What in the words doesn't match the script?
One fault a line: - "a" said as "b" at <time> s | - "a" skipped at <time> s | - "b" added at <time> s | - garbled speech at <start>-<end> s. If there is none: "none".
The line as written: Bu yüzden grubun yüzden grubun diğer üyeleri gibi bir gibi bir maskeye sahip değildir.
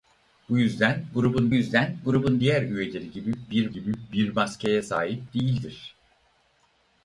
none